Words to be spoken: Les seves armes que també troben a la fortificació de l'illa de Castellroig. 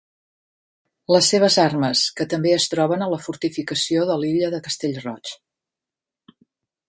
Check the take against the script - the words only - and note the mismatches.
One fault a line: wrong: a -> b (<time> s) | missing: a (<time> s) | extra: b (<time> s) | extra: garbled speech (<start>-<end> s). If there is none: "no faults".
extra: es (2.5 s)